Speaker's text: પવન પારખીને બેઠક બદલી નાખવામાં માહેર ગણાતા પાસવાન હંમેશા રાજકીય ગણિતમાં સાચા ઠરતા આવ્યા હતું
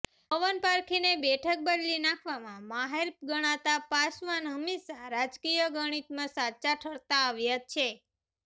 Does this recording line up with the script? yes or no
no